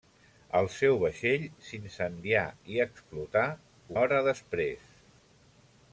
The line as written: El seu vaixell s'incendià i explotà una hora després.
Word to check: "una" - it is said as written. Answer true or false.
false